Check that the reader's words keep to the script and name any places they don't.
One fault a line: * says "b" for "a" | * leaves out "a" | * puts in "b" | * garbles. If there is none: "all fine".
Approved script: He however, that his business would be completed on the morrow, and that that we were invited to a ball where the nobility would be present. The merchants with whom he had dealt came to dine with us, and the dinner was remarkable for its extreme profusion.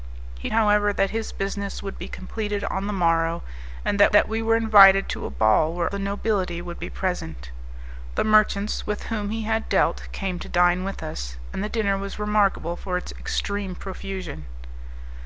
all fine